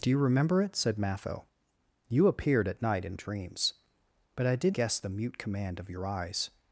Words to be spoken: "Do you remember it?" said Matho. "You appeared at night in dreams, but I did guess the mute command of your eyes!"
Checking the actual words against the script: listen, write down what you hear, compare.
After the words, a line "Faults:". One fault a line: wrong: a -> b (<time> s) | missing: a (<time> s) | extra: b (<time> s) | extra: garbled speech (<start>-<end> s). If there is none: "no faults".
"Do you remember it?" said Matho. "You appeared at night in dreams, but I did guess the mute command of your eyes!"
Faults:
no faults